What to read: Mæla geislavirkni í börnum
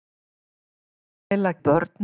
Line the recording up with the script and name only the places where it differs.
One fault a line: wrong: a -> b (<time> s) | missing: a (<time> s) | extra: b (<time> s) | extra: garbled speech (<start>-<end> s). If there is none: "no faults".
missing: geislavirkni (1.5 s)